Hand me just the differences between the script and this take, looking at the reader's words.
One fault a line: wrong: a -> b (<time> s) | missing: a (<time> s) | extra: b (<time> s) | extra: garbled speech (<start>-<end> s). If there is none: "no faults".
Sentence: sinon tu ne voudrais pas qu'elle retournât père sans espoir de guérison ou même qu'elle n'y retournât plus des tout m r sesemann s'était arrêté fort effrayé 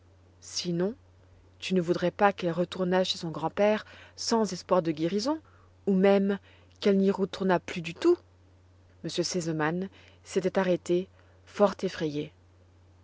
extra: chez son grand (3.0 s)
wrong: des -> du (7.8 s)